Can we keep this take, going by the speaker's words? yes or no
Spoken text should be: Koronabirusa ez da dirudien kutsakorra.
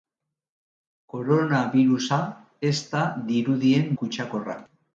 yes